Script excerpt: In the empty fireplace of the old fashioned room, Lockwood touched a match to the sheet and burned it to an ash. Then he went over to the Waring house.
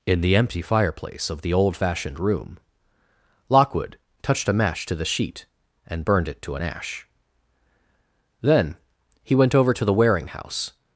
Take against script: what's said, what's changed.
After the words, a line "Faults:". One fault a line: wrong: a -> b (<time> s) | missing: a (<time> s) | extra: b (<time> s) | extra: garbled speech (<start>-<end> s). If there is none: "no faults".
In the empty fireplace of the old fashioned room, Lockwood touched a match to the sheet and burned it to an ash. Then he went over to the Waring house.
Faults:
no faults